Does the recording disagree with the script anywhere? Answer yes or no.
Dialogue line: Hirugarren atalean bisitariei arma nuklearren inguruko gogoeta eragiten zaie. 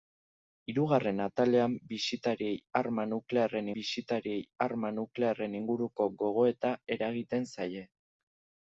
yes